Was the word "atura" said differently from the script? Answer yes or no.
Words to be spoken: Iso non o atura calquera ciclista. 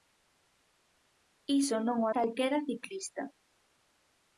yes